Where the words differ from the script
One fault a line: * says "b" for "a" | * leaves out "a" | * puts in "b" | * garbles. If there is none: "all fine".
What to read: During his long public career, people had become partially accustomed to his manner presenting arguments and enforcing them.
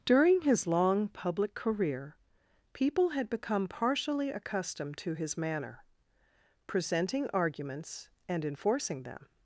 all fine